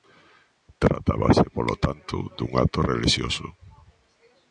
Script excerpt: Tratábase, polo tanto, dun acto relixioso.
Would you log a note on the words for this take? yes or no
no